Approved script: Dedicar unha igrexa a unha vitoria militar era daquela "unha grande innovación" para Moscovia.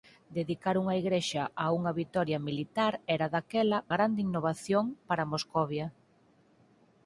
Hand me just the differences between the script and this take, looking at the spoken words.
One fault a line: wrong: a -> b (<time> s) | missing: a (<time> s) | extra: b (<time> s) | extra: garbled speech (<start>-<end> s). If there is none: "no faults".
missing: unha (3.8 s)